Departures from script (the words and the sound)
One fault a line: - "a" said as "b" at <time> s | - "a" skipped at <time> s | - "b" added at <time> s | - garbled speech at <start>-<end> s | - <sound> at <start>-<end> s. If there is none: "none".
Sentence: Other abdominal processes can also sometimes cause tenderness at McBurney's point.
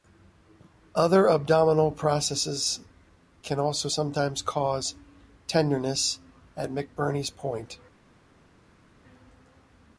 none